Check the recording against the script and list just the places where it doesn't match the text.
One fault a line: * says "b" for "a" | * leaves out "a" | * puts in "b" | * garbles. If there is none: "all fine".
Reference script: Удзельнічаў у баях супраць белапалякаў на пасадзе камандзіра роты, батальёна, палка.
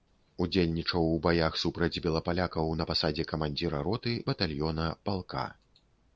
all fine